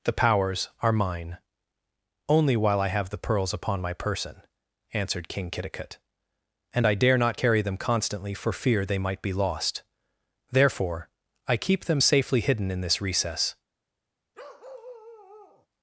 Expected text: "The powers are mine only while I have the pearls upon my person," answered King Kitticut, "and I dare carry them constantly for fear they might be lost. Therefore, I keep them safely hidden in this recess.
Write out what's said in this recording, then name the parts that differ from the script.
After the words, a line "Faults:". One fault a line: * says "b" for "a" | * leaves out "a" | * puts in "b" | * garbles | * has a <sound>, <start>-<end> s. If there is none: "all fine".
"The powers are mine only while I have the pearls upon my person," answered King Kitticut, "and I dare not carry them constantly for fear they might be lost. Therefore, I keep them safely hidden in this recess.
Faults:
* puts in "not"
* has a bark, 14.3-15.7 s